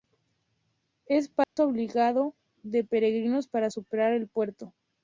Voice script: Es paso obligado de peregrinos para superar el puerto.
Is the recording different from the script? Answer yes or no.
no